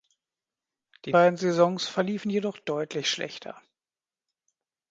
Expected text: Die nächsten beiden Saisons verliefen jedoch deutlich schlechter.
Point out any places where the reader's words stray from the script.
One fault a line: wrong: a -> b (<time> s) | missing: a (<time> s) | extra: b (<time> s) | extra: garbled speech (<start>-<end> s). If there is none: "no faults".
missing: nächsten (1.1 s)